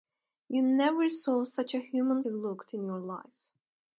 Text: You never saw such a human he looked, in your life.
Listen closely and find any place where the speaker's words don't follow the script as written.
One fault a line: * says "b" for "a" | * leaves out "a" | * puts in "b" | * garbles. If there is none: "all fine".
all fine